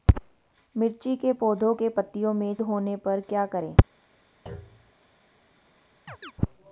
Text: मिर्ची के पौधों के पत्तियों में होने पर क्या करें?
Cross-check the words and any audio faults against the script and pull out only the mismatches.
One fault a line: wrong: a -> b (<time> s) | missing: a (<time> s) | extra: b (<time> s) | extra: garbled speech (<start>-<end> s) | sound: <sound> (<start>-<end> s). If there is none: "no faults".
sound: thud (4.5-4.9 s)
sound: chirp (6.1-6.3 s)